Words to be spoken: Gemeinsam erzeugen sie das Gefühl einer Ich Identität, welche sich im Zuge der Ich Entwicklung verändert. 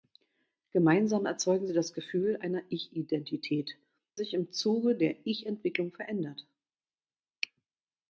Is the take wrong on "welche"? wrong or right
wrong